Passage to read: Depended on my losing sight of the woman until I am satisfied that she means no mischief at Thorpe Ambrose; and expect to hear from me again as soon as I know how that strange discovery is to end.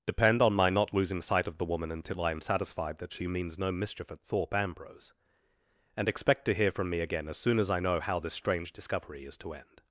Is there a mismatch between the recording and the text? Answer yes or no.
yes